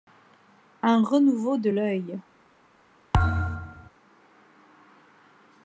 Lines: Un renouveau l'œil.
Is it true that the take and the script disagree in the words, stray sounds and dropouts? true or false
true